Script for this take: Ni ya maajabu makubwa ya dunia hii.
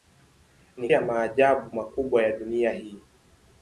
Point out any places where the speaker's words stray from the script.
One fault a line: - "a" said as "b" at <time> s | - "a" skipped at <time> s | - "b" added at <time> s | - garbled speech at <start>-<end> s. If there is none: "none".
none